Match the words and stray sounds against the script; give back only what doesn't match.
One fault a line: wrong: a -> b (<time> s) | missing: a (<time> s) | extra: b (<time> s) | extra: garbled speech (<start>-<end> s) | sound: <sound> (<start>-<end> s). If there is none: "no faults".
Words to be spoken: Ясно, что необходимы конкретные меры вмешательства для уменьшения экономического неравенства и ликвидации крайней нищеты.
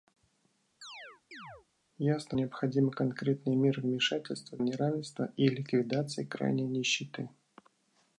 sound: chirp (0.8-1.7 s)
missing: что (2.4 s)
missing: для уменьшения экономического (4.6 s)